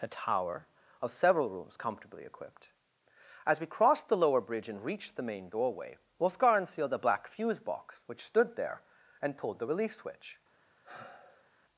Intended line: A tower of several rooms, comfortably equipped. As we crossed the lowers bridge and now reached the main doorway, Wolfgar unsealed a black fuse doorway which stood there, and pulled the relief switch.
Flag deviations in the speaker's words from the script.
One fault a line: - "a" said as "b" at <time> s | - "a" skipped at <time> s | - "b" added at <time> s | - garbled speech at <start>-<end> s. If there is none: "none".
- "lowers" said as "lower" at 4.2 s
- "now" skipped at 4.8 s
- "doorway" said as "box" at 7.6 s